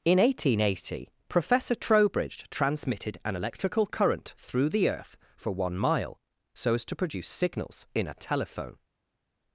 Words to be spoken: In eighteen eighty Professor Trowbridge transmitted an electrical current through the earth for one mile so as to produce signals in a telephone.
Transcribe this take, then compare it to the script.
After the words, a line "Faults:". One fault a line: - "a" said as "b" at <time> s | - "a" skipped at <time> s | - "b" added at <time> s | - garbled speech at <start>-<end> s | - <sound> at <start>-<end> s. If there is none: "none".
In eighteen eighty Professor Trowbridge transmitted an electrical current through the earth for one mile so as to produce signals in a telephone.
Faults:
none